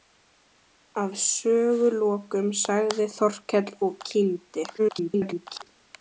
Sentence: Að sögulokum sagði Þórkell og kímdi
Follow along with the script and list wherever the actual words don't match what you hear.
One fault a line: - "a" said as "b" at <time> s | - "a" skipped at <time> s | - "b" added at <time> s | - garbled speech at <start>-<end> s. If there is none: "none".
- garbled speech at 4.8-5.7 s